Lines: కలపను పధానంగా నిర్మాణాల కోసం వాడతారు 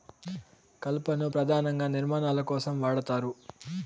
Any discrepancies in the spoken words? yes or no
no